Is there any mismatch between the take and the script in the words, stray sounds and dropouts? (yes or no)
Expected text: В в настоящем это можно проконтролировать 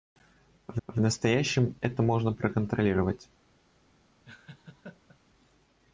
yes